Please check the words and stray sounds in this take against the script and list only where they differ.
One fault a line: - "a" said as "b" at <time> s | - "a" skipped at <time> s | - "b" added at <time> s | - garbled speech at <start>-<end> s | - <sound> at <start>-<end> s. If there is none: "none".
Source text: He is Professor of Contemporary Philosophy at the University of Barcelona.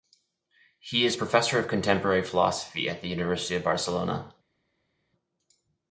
none